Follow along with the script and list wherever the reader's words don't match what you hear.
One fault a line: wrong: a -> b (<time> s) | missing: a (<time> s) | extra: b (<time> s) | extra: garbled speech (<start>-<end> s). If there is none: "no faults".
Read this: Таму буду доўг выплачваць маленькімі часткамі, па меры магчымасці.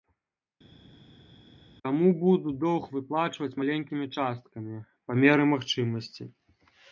no faults